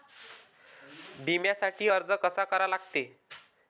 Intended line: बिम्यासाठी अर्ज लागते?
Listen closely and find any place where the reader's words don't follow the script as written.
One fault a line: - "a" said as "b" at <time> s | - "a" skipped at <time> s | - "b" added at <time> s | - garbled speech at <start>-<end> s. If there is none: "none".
- "कसा करा" added at 2.2 s